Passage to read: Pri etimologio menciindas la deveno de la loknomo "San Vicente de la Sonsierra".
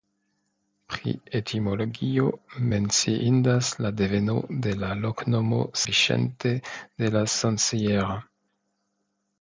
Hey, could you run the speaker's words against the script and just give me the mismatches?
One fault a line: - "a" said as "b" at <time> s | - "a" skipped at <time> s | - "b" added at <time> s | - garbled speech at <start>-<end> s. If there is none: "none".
- "San" skipped at 5.6 s